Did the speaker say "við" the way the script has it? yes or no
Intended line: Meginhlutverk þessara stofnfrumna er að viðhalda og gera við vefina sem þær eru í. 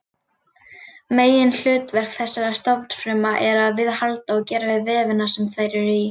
yes